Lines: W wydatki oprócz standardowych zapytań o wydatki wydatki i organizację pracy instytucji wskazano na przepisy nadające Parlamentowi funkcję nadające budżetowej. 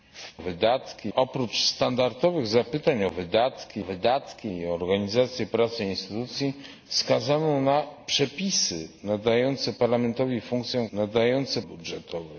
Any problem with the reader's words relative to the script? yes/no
no